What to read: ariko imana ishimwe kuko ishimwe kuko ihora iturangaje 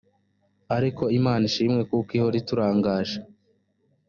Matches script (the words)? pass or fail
fail